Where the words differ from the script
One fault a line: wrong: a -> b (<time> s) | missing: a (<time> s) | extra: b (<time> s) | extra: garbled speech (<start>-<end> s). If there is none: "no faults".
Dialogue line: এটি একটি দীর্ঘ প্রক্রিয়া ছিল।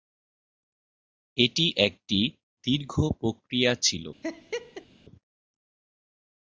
no faults